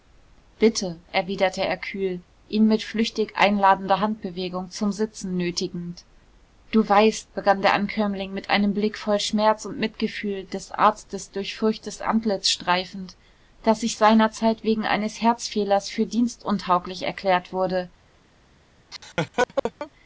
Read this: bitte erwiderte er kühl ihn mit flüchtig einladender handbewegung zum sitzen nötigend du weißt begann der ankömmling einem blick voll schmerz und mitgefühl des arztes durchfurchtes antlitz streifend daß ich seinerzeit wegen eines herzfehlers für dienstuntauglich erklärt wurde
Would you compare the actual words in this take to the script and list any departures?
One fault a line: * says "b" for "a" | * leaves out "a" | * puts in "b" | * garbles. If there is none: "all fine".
* puts in "mit"